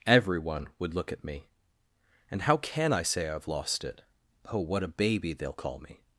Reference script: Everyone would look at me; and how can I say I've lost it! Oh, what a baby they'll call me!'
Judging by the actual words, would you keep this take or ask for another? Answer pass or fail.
pass